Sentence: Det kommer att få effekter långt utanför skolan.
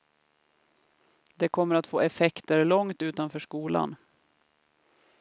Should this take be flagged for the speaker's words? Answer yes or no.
no